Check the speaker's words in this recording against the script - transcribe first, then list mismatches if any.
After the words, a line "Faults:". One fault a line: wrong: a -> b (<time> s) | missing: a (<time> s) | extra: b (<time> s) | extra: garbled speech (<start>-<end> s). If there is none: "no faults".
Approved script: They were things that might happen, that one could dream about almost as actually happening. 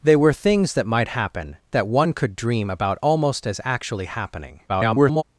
They were things that might happen, that one could dream about almost as actually happening. [garbled]
Faults:
extra: garbled speech (4.7-5.2 s)